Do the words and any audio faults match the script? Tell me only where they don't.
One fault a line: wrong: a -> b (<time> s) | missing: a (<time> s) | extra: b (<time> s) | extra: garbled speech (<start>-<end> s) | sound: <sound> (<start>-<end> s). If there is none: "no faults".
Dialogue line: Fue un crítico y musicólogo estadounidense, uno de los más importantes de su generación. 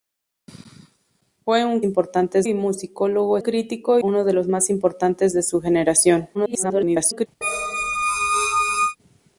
wrong: crítico -> importantes (1.8 s)
wrong: estadounidense -> crítico (3.4 s)
extra: garbled speech (6.3-7.3 s)
sound: squeak (7.4-9.0 s)